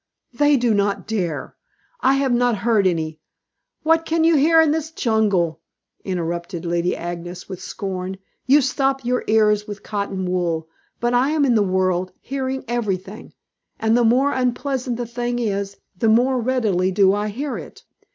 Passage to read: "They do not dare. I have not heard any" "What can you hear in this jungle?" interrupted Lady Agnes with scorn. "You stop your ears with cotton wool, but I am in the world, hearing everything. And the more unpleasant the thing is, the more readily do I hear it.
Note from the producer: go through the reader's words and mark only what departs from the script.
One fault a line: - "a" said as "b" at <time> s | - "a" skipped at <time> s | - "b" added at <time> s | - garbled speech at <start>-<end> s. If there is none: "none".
none